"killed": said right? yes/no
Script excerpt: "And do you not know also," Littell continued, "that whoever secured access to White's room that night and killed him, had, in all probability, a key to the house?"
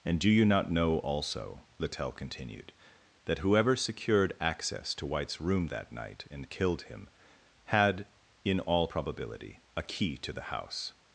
yes